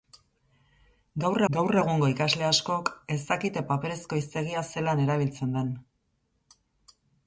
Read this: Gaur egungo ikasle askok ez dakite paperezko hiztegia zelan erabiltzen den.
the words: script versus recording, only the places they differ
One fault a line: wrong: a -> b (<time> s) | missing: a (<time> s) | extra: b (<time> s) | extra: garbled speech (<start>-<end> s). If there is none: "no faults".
extra: gaur (1.6 s)